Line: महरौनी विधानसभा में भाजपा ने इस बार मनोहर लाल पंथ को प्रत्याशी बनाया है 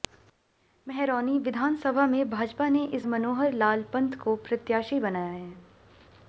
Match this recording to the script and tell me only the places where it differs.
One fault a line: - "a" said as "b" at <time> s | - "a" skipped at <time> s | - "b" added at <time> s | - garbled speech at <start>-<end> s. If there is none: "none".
- "बार" skipped at 3.0 s